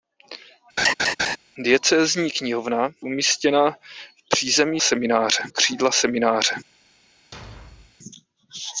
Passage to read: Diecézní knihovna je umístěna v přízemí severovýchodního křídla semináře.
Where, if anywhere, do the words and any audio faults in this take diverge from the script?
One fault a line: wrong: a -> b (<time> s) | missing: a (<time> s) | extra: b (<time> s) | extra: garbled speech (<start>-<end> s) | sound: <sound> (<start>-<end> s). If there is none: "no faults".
sound: laugh (0.8-1.4 s)
missing: je (2.9 s)
wrong: severovýchodního -> semináře (4.8 s)
sound: thud (7.3-8.0 s)